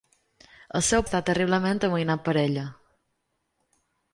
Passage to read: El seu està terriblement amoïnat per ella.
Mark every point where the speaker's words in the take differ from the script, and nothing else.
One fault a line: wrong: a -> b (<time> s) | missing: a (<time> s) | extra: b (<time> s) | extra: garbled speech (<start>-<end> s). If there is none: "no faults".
no faults